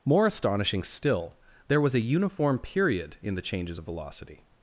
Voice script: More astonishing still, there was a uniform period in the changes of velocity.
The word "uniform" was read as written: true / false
true